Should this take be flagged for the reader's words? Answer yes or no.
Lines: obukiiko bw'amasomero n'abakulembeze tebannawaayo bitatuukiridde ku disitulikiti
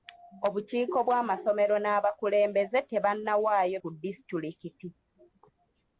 yes